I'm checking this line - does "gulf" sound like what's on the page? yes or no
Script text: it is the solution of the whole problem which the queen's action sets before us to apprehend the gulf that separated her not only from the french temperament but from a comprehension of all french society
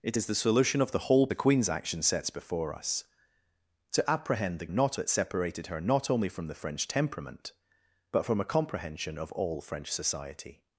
no